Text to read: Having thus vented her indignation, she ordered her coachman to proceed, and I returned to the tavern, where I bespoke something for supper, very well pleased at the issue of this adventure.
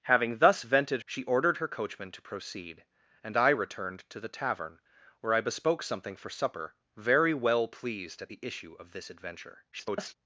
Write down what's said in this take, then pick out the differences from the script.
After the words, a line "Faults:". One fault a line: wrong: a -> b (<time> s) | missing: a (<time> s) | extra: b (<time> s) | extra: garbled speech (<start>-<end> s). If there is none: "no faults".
Having thus vented she ordered her coachman to proceed, and I returned to the tavern, where I bespoke something for supper, very well pleased at the issue of this adventure. [garbled]
Faults:
missing: her indignation (1.0 s)
extra: garbled speech (9.7-10.2 s)